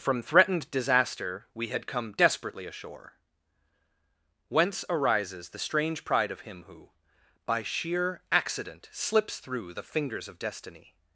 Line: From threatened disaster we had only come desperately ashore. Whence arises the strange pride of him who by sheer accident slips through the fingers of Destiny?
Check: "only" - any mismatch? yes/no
yes